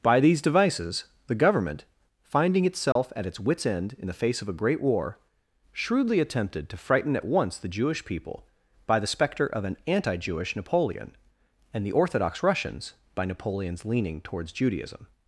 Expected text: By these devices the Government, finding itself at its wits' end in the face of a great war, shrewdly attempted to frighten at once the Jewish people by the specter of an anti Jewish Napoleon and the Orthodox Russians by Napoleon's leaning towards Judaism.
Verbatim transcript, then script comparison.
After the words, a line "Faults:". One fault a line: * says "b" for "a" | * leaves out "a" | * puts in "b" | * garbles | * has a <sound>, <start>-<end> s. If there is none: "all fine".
By these devices the Government, finding itself at its wits' end in the face of a great war, shrewdly attempted to frighten at once the Jewish people by the specter of an anti Jewish Napoleon and the Orthodox Russians by Napoleon's leaning towards Judaism.
Faults:
* has a dropout, 2.9-3.0 s